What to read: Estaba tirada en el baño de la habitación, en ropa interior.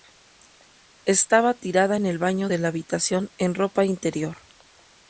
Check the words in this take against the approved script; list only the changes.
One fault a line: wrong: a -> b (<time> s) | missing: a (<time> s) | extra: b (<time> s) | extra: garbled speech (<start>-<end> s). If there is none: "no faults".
no faults